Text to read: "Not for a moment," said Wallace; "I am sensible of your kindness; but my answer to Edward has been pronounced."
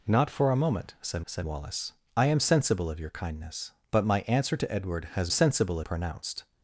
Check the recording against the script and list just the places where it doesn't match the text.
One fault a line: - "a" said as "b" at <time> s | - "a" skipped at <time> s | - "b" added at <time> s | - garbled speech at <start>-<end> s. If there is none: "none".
- "said" added at 1.2 s
- "been" said as "sensible" at 5.3 s